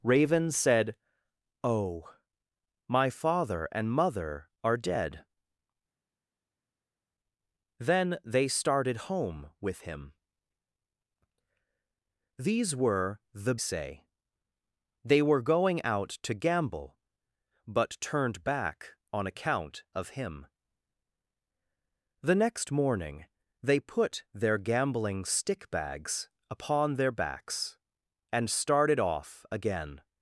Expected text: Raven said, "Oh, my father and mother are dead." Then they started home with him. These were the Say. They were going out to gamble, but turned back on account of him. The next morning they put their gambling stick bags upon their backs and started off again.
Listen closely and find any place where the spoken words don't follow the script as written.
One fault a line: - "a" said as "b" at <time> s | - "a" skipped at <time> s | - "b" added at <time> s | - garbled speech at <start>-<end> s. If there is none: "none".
none